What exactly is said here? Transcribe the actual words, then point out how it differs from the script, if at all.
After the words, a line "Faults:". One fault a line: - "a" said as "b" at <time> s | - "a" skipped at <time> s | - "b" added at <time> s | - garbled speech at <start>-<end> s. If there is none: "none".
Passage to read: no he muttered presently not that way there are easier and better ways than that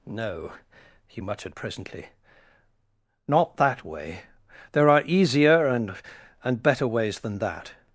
no he muttered presently not that way there are easier and and better ways than that
Faults:
- "and" added at 6.4 s